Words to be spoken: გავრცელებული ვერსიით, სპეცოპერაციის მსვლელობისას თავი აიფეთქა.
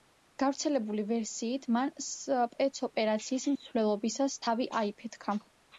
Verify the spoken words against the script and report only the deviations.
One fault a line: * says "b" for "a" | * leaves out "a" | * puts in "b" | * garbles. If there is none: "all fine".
* puts in "მან"